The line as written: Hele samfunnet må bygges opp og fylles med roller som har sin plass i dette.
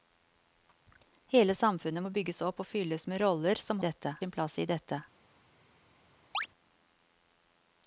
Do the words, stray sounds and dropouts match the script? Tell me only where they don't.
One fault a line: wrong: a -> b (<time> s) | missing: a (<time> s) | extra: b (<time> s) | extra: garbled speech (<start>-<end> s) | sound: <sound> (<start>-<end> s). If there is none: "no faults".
wrong: har -> dette (3.8 s)
sound: chirp (6.3-6.5 s)